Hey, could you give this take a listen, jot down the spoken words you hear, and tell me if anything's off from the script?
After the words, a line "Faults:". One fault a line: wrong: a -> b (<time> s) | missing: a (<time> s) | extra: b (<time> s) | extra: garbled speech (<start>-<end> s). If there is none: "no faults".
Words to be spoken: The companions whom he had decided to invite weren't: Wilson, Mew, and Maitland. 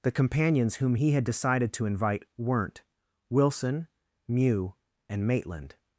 The companions whom he had decided to invite weren't: Wilson, Mew, and Maitland.
Faults:
no faults